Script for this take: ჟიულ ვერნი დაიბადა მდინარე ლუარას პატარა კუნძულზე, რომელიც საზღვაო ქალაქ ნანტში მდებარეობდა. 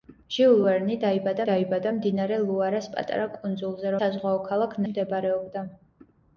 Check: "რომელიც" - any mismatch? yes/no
yes